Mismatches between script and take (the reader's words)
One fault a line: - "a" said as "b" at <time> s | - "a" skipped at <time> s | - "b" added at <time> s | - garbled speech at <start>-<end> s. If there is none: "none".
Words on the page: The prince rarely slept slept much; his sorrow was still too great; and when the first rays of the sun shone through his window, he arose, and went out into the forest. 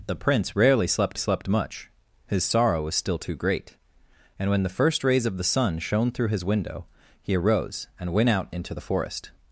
none